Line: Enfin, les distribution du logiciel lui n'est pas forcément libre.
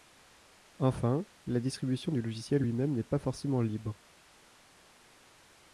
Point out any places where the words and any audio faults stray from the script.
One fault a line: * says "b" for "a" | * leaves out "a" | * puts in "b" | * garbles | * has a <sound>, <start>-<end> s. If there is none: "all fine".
* says "la" for "les"
* puts in "même"